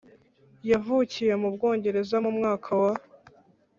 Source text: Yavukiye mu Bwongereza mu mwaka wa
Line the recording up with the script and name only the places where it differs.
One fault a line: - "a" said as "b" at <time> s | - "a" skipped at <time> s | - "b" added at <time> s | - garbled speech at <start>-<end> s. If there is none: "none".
none